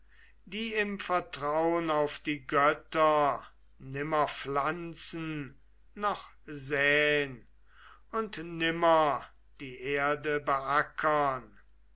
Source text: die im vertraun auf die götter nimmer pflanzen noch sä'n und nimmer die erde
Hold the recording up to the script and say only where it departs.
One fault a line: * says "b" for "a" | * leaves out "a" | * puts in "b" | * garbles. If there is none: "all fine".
all fine